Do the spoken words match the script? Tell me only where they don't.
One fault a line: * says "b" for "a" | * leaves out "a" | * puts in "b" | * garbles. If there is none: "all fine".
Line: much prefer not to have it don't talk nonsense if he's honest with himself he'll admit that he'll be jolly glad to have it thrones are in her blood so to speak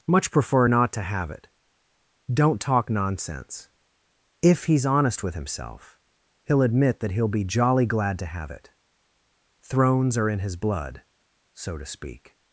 * says "his" for "her"